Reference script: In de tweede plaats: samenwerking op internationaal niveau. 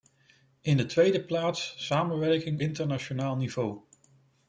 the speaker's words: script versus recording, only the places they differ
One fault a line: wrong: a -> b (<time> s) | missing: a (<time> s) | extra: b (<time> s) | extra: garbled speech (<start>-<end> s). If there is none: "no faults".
missing: op (2.6 s)